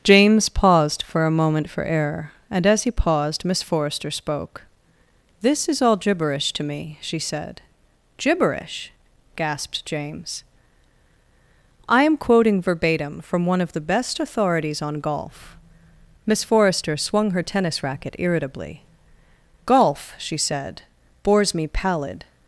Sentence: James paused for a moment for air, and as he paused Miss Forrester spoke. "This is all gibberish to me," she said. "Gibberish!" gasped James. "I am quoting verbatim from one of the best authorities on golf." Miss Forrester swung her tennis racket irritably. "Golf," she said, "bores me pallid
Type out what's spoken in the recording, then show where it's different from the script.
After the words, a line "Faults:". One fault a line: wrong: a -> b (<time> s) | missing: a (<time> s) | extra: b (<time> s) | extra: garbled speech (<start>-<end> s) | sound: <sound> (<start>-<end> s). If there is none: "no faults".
James paused for a moment for air, and as he paused Miss Forrester spoke. "This is all gibberish to me," she said. "Gibberish!" gasped James. "I am quoting verbatim from one of the best authorities on golf." Miss Forrester swung her tennis racket irritably. "Golf," she said, "bores me pallid
Faults:
no faults